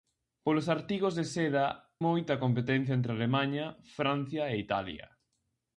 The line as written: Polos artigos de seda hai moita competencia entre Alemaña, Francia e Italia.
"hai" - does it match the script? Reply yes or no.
no